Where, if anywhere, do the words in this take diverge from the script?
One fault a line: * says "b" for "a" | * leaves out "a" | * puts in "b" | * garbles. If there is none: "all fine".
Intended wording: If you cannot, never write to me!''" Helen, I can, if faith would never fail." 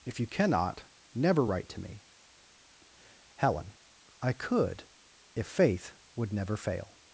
* says "could" for "can"